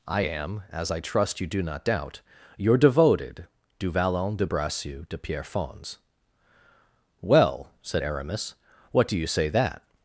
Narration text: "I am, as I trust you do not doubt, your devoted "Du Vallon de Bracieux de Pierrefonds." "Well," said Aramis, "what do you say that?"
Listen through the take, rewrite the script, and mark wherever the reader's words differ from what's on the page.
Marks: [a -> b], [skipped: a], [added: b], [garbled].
"I am, as I trust you do not doubt, your devoted "Du Vallon de Bracieux de Pierrefonds." "Well," said Aramis, "what do you say that?"